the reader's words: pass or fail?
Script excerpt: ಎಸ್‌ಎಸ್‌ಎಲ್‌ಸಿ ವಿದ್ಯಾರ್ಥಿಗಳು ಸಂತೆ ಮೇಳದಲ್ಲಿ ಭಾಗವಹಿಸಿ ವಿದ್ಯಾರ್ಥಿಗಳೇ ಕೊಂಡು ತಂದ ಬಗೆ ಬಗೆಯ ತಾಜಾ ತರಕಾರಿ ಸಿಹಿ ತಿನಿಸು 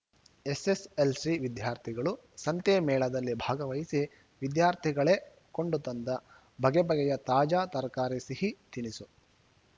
pass